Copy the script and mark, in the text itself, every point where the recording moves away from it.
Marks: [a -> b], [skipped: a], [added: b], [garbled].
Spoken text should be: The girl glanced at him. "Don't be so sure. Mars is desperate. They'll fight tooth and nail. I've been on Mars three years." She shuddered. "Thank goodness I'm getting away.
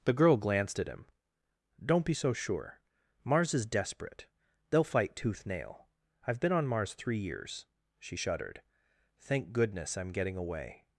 The girl glanced at him. "Don't be so sure. Mars is desperate. They'll fight tooth [skipped: and] nail. I've been on Mars three years." She shuddered. "Thank goodness I'm getting away.